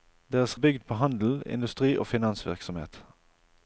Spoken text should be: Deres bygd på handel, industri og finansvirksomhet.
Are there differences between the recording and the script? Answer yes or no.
no